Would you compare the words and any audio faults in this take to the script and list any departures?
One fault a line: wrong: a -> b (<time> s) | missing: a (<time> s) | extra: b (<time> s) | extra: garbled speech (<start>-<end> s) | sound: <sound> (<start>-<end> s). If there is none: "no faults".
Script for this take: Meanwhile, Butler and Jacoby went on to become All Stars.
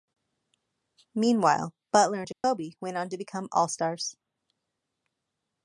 sound: dropout (2.3-2.4 s)